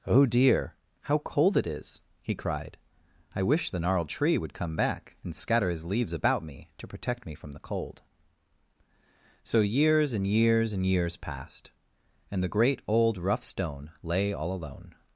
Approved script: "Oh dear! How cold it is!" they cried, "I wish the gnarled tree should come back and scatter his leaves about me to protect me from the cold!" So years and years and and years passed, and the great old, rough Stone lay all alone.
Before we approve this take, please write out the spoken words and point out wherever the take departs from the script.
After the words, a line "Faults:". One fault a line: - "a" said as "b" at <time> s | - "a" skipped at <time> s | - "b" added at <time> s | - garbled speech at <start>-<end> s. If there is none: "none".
"Oh dear! How cold it is!" he cried, "I wish the gnarled tree would come back and scatter his leaves about me to protect me from the cold!" So years and years and years passed, and the great old, rough Stone lay all alone.
Faults:
- "they" said as "he" at 2.2 s
- "should" said as "would" at 4.3 s
- "and" skipped at 10.8 s